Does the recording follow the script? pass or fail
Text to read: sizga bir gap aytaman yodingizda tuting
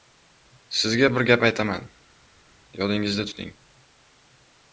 pass